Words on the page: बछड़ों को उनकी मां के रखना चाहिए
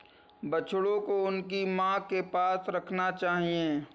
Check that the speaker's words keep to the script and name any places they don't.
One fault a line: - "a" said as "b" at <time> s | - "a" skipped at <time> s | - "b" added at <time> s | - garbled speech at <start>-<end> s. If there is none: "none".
- "पास" added at 2.2 s